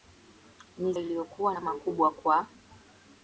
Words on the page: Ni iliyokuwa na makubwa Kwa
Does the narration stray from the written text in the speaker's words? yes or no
no